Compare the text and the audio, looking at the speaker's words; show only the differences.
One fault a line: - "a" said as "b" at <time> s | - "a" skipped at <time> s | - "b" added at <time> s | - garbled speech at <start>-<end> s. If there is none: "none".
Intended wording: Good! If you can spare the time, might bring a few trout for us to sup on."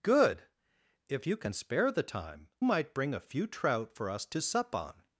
none